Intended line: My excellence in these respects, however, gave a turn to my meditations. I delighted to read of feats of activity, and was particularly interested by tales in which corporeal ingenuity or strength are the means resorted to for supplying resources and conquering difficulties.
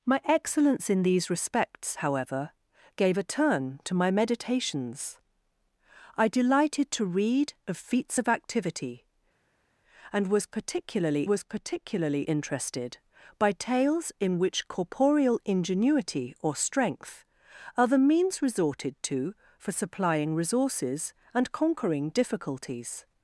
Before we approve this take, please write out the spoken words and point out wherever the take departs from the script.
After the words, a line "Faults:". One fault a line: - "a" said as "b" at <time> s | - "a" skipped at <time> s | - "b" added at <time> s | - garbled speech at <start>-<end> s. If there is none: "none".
My excellence in these respects, however, gave a turn to my meditations. I delighted to read of feats of activity, and was particularly was particularly interested by tales in which corporeal ingenuity or strength are the means resorted to for supplying resources and conquering difficulties.
Faults:
- "was particularly" added at 11.2 s